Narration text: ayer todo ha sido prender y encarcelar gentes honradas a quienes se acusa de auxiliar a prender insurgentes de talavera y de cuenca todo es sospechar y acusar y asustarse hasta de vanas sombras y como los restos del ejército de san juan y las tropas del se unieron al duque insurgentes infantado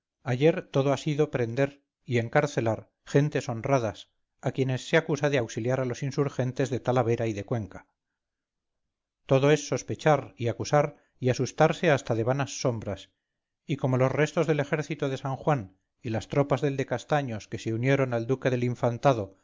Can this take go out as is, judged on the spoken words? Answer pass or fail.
fail